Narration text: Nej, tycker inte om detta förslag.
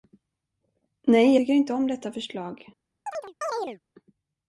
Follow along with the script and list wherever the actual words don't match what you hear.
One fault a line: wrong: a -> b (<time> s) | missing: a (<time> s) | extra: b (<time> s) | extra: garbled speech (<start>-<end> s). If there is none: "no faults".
no faults